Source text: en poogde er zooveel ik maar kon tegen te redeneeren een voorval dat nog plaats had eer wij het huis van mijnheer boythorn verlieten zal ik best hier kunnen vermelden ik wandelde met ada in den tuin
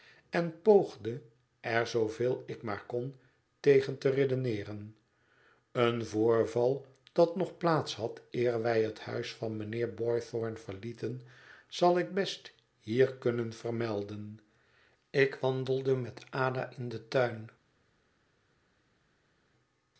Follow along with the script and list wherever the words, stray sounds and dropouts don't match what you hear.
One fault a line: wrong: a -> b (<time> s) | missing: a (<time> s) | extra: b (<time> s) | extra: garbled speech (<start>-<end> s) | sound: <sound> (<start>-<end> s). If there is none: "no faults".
no faults